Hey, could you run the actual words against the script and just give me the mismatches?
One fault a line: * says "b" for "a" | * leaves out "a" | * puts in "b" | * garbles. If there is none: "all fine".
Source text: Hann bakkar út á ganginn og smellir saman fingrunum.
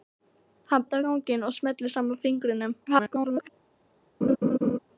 * leaves out "bakkar"
* garbles